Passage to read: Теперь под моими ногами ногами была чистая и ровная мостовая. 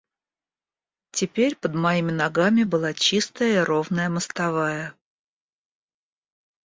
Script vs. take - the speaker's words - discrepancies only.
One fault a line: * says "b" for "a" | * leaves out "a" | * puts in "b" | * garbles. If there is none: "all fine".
* leaves out "ногами"